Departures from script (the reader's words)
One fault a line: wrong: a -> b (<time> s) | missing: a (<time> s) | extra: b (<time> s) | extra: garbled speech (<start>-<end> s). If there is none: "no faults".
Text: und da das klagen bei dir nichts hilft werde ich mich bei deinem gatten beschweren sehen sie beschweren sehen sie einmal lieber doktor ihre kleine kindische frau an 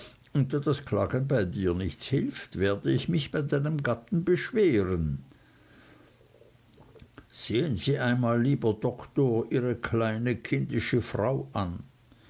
missing: beschweren sehen sie (8.0 s)